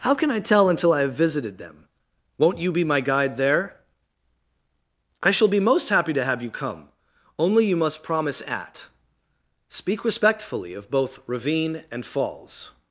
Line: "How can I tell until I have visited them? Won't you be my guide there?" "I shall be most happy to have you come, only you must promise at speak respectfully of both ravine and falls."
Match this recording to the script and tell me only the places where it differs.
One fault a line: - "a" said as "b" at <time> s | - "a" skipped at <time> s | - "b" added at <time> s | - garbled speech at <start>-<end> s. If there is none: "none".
none